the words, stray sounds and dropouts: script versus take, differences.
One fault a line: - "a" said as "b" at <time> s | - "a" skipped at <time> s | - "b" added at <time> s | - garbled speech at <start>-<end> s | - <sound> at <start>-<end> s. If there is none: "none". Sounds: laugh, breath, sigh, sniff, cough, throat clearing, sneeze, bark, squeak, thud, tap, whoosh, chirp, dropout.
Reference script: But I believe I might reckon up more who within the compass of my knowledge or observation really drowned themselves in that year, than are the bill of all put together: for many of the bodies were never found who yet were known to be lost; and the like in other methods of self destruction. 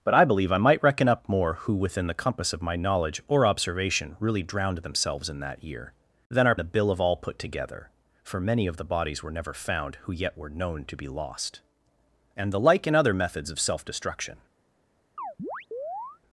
- chirp at 15.2-16.2 s